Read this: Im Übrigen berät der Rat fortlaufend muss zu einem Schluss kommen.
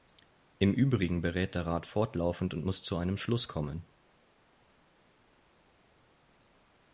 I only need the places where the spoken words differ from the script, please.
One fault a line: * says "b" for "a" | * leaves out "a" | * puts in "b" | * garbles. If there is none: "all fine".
* puts in "und"